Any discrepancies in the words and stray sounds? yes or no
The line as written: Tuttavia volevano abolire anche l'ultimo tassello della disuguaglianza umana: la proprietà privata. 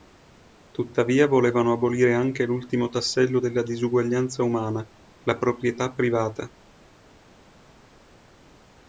no